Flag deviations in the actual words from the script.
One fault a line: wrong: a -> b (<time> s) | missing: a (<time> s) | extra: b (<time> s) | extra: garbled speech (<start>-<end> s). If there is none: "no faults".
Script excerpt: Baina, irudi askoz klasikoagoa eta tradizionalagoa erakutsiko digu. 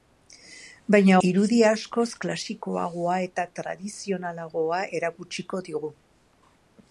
no faults